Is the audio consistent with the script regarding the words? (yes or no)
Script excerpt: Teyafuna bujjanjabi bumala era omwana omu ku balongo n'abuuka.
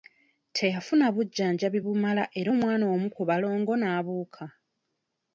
yes